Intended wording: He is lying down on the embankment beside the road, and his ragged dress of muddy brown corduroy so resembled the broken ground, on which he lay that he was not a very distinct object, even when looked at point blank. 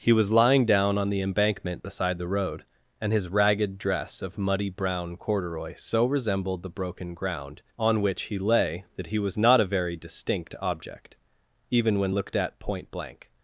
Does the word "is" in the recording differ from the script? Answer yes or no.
yes